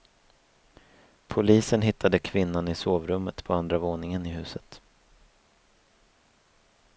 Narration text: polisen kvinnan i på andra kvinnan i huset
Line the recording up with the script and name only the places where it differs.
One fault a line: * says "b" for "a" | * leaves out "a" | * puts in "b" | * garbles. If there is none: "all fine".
* puts in "hittade"
* puts in "sovrummet"
* says "våningen" for "kvinnan"